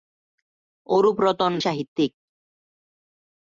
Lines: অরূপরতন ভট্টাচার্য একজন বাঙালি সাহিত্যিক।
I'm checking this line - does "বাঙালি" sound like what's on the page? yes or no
no